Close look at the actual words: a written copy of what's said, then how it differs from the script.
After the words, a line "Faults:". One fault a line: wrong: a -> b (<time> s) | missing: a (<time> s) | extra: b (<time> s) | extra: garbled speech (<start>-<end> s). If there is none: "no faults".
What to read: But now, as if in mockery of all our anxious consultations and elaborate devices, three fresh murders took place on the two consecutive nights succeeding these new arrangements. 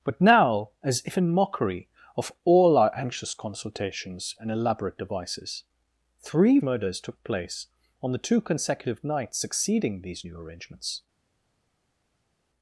But now, as if in mockery of all our anxious consultations and elaborate devices, three murders took place on the two consecutive nights succeeding these new arrangements.
Faults:
missing: fresh (6.6 s)